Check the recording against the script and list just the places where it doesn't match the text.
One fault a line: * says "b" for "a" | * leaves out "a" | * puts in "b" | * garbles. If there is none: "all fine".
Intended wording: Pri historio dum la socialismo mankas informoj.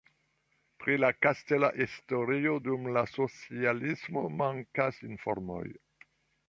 * puts in "la kastela"